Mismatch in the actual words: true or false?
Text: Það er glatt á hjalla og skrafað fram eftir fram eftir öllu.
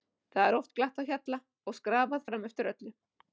true